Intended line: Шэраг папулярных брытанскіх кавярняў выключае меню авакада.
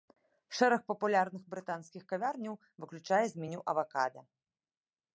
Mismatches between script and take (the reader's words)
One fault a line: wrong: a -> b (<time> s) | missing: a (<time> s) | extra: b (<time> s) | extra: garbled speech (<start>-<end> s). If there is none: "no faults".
extra: з (3.3 s)